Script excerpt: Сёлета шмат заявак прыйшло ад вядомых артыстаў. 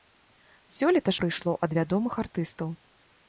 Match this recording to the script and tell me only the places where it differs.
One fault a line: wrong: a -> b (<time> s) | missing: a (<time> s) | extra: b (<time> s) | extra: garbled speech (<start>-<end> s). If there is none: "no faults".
missing: шмат заявак (1.1 s)